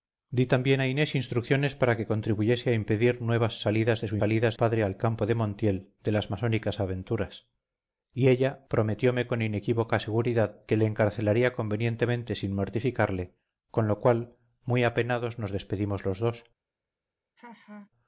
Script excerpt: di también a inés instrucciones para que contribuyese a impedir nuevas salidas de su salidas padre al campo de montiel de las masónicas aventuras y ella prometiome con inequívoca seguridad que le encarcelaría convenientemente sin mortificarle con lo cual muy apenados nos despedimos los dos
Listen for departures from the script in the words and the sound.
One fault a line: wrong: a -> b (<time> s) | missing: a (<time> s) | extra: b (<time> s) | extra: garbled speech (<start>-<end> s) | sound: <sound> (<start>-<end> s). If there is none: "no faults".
sound: laugh (17.4-17.9 s)